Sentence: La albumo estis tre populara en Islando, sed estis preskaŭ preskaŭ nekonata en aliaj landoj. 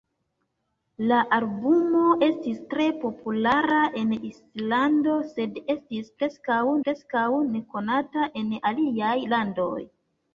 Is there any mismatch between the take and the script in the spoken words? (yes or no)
no